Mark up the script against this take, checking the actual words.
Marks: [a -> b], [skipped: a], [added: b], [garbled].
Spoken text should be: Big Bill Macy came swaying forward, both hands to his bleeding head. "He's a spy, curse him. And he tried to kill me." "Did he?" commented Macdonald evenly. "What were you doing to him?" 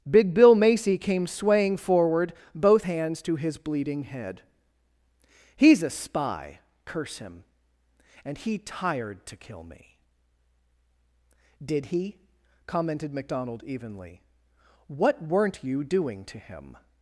Big Bill Macy came swaying forward, both hands to his bleeding head. "He's a spy, curse him. And he [tried -> tired] to kill me." "Did he?" commented Macdonald evenly. "What [were -> weren't] you doing to him?"